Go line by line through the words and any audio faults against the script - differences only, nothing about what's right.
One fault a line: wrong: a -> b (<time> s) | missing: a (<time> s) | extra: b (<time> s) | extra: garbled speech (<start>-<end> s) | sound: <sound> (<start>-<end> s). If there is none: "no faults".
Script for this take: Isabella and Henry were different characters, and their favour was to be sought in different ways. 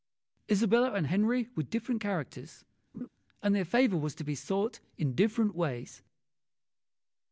sound: laugh (2.9-3.1 s)